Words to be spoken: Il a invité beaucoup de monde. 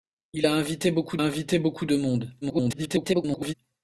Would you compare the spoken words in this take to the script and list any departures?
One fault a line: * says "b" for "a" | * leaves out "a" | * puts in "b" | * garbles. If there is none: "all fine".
* puts in "invité beaucoup"
* garbles